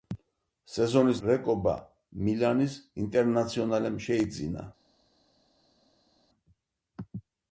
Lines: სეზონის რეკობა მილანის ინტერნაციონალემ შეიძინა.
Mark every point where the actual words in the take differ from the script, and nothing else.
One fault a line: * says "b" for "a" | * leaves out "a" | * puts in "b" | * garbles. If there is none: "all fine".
all fine